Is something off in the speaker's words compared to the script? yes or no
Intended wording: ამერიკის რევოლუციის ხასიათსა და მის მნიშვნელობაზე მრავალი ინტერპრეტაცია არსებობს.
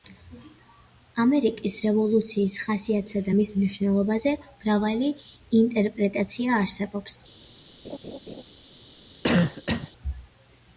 no